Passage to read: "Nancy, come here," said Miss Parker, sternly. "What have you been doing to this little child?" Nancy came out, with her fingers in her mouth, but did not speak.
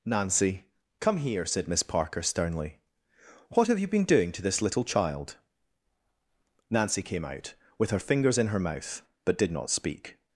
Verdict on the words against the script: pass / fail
pass